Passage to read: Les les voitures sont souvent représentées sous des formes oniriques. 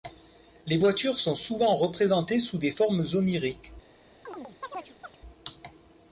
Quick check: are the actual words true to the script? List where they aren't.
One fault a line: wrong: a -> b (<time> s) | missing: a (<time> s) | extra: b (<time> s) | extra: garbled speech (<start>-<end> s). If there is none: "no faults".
missing: les (0.8 s)